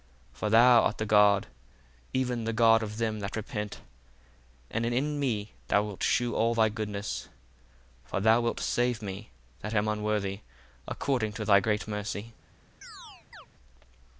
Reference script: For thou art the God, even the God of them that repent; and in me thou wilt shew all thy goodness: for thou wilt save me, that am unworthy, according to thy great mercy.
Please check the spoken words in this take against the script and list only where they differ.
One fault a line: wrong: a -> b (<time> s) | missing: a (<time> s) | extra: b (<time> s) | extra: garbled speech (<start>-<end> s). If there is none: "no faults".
no faults